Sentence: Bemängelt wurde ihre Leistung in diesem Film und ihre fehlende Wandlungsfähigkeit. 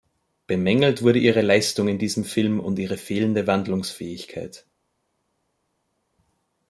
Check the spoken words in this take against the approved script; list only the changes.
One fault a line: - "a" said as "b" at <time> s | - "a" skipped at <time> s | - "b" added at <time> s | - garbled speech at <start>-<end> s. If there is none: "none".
none